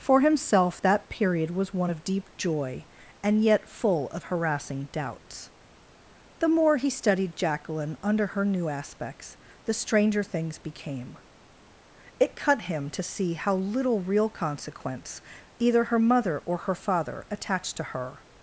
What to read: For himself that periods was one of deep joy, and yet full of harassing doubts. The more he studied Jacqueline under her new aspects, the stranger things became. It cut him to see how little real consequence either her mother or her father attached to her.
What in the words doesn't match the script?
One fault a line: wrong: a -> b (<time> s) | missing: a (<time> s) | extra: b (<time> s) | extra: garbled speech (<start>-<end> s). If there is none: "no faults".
wrong: periods -> period (1.1 s)